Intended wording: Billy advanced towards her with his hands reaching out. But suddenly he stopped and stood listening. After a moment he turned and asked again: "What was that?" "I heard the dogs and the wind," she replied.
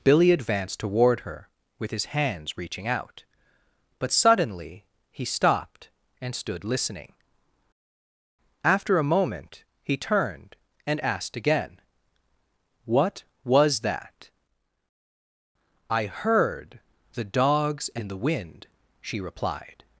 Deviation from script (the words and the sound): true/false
true